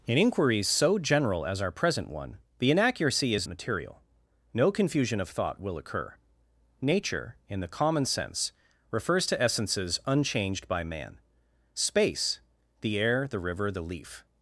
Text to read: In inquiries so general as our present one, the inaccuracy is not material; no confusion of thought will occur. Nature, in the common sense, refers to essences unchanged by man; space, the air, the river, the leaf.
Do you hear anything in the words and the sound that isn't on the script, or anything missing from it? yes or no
yes